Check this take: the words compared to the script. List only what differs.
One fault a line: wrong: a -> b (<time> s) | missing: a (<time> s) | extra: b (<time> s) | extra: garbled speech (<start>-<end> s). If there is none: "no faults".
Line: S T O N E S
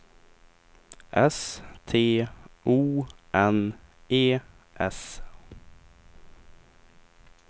no faults